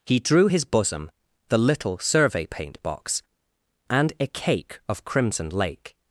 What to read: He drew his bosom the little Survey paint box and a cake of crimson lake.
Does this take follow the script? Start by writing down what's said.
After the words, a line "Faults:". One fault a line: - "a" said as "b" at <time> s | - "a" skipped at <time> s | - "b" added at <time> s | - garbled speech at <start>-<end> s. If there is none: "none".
He drew his bosom the little Survey paint box and a cake of crimson lake.
Faults:
none